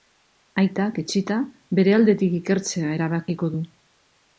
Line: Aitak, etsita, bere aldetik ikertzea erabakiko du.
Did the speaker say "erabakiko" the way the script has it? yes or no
yes